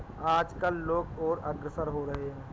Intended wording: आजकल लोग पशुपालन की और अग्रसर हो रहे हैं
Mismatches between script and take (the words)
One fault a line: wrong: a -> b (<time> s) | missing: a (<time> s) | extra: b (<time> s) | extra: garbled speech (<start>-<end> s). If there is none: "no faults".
missing: पशुपालन की (1.1 s)